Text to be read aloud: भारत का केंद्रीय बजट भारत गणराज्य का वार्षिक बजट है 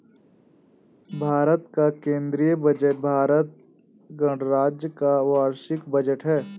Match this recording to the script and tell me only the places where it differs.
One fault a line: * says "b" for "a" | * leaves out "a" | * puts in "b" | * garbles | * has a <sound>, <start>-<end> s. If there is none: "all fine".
all fine